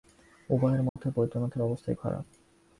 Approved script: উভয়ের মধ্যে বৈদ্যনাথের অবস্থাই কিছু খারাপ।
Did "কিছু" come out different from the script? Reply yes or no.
yes